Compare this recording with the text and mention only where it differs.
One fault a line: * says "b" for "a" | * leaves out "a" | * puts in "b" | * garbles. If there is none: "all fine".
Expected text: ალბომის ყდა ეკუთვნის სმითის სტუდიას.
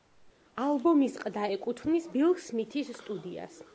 * puts in "ბილ"